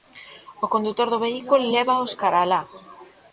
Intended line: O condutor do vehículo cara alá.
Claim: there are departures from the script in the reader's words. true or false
true